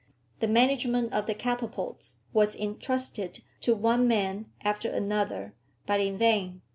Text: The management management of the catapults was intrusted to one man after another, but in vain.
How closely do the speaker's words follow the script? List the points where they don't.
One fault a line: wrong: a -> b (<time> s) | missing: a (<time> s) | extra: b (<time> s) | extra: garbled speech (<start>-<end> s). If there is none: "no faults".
missing: management (1.1 s)